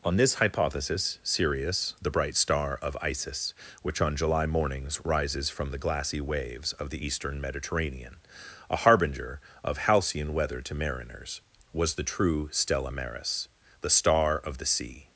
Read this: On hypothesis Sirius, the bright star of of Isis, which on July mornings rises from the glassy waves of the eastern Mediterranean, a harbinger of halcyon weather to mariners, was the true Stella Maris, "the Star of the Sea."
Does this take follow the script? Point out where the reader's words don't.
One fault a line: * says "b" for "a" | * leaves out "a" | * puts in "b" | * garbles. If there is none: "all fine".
* puts in "this"
* leaves out "of"